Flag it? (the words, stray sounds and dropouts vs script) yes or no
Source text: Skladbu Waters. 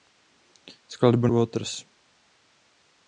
no